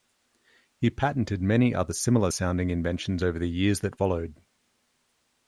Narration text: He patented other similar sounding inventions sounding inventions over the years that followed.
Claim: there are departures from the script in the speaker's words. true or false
true